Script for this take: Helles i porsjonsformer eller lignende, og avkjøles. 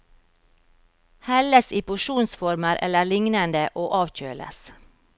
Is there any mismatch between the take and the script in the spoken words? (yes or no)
no